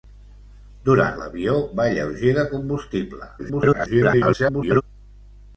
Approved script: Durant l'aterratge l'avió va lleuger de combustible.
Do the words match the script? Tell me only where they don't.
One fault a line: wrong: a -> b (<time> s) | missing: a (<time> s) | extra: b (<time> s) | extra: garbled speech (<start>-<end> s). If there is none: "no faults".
missing: l'aterratge (1.2 s)
extra: garbled speech (3.4-4.8 s)